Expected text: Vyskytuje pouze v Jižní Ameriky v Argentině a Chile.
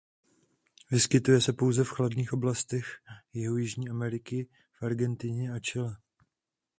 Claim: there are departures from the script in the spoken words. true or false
true